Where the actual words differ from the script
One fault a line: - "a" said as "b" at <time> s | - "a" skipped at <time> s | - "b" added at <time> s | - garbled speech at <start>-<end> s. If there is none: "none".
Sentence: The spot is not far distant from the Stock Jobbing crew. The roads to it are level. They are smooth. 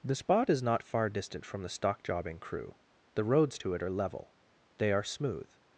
none